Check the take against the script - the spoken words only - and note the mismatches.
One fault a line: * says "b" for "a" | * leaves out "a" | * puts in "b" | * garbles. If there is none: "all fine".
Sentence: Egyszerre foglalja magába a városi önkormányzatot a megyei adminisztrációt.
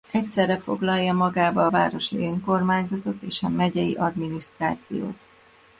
* puts in "és"